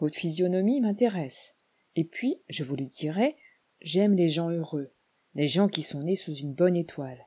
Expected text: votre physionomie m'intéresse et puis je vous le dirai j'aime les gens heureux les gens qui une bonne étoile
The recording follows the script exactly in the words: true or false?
false